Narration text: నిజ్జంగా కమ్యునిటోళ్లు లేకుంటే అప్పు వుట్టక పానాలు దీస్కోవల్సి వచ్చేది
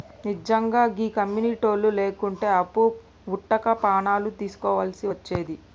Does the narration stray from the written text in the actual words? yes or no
yes